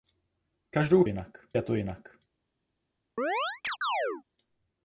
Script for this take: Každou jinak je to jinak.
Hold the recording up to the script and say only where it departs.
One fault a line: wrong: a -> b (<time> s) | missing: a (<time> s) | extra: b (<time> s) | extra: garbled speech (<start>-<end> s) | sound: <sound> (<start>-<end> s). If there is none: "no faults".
sound: chirp (3.2-4.2 s)